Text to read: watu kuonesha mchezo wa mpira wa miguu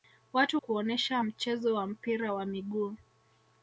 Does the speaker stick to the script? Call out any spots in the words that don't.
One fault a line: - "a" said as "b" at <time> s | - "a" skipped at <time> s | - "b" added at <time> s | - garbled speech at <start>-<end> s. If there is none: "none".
none